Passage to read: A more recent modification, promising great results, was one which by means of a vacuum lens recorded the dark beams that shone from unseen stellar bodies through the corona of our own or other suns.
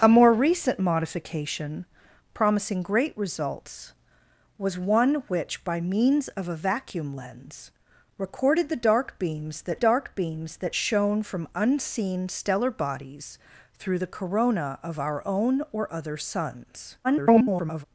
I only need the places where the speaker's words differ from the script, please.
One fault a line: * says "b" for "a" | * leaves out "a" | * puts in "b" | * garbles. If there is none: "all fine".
* puts in "dark beams that"
* garbles